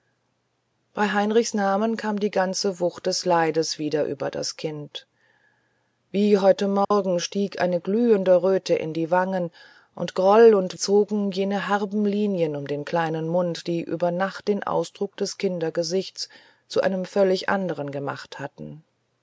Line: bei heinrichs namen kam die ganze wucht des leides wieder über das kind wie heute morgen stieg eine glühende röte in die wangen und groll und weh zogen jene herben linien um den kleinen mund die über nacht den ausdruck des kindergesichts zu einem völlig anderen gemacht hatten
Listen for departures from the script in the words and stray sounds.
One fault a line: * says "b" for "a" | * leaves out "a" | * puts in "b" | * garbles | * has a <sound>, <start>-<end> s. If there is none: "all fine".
* has a dropout, 6.8-6.9 s
* leaves out "weh"